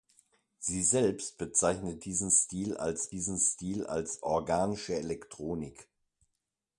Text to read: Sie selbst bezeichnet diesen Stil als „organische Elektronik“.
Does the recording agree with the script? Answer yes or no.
no